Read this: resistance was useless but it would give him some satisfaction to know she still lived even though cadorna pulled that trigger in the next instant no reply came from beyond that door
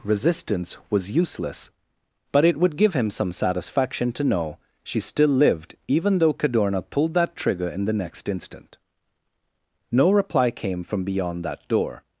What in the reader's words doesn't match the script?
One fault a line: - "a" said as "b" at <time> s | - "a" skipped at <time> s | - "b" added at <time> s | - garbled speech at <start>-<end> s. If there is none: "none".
none